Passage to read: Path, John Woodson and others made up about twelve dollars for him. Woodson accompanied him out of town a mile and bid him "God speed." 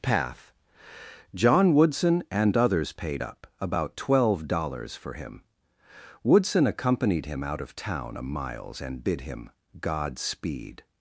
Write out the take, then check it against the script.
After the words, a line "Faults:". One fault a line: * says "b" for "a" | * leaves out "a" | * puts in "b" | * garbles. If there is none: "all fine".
Path, John Woodson and others paid up about twelve dollars for him. Woodson accompanied him out of town a miles and bid him "God speed."
Faults:
* says "paid" for "made"
* says "miles" for "mile"